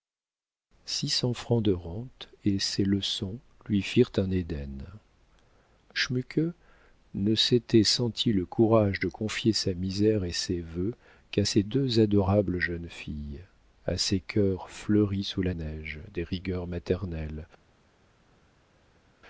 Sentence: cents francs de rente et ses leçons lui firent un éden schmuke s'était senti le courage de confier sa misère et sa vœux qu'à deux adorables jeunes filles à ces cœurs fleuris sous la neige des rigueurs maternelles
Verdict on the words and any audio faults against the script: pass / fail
fail